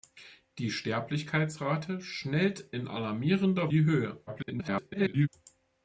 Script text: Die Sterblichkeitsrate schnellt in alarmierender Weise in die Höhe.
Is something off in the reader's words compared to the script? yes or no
yes